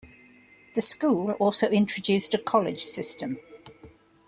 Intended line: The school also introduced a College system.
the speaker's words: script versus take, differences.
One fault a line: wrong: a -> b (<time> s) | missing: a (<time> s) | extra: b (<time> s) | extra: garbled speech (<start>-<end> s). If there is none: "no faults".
no faults